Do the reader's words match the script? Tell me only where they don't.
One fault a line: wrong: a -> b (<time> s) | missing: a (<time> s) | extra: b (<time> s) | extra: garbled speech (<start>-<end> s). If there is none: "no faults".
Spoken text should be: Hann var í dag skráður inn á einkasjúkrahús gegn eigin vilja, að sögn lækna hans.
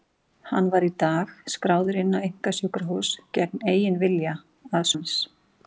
missing: sögn lækna (4.9 s)